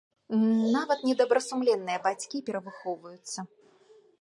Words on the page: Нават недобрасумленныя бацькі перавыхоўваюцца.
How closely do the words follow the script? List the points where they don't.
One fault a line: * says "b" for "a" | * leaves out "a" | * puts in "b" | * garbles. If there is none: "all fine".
all fine